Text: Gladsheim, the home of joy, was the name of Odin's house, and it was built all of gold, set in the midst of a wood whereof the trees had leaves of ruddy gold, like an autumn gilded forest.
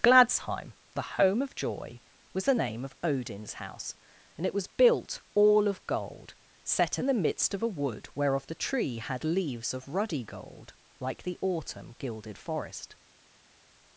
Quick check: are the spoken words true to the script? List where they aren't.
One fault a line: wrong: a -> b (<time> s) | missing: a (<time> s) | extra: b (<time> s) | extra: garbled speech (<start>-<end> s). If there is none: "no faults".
wrong: trees -> tree (8.5 s)
wrong: an -> the (11.2 s)